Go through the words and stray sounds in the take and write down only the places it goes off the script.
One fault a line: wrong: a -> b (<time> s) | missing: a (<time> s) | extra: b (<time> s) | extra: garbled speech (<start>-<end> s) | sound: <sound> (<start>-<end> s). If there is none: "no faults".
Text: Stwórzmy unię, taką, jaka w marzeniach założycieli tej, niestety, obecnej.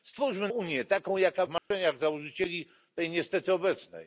sound: dropout (1.6-1.7 s)